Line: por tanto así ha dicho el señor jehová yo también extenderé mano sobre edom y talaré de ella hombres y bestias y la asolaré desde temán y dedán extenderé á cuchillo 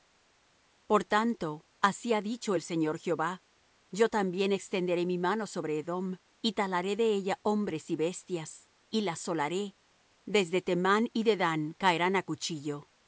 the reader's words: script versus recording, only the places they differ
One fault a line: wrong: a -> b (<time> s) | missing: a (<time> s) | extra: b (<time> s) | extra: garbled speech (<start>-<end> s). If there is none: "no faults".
extra: mi (5.1 s)
wrong: extenderé -> caerán (11.8 s)